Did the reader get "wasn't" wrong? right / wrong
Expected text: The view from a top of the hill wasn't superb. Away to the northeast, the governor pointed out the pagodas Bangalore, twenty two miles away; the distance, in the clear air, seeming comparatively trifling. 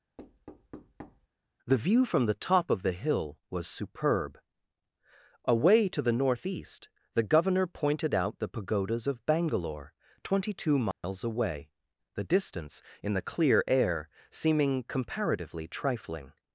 wrong